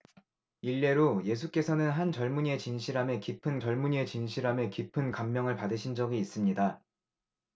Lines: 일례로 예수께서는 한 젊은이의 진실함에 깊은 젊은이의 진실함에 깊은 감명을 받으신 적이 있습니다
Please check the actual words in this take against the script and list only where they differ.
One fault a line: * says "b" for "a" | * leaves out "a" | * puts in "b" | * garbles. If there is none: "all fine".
all fine